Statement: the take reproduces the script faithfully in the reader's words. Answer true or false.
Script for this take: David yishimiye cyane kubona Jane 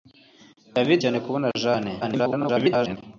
false